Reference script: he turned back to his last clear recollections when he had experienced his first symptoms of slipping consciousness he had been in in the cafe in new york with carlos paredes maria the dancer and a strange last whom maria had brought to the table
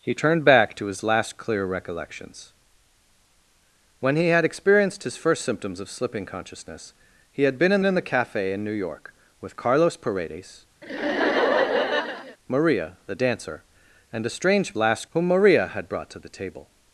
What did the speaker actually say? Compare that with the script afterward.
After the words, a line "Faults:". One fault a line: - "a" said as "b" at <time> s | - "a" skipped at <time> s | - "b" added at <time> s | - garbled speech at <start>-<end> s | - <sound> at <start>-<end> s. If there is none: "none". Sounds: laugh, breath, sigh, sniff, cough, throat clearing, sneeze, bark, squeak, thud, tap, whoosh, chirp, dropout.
he turned back to his last clear recollections when he had experienced his first symptoms of slipping consciousness he had been in in the cafe in new york with carlos paredes maria the dancer and a strange last whom maria had brought to the table
Faults:
- laugh at 10.8-12.4 s